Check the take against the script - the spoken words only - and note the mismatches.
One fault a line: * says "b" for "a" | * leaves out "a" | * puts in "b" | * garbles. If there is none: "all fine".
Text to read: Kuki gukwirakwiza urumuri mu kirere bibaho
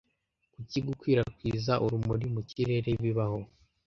all fine